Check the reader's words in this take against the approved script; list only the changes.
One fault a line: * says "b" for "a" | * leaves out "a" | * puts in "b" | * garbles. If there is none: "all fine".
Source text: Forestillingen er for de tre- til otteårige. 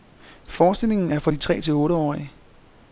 all fine